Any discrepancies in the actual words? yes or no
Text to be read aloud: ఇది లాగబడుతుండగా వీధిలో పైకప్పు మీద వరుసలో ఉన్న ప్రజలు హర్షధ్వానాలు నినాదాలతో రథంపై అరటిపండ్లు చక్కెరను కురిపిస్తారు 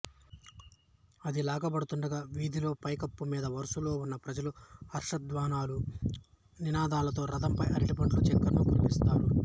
yes